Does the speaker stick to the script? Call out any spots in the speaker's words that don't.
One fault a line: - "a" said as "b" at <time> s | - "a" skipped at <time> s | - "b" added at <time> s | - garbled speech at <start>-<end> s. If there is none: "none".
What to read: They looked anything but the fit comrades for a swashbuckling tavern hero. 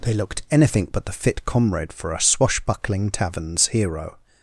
- "comrades" said as "comrade" at 1.4 s
- "tavern" said as "taverns" at 3.1 s